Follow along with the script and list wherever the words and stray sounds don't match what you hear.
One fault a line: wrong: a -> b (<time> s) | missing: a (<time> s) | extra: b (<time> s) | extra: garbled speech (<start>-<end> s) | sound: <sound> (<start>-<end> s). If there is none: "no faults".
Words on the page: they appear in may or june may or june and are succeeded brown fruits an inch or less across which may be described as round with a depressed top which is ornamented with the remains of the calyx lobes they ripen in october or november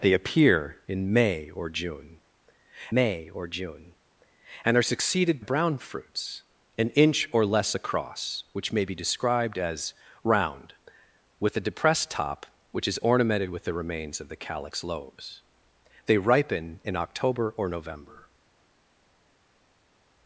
no faults